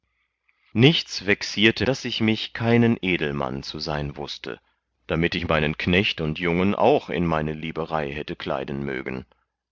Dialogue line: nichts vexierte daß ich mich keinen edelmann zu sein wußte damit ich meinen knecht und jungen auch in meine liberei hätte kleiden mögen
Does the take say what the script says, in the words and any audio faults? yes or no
yes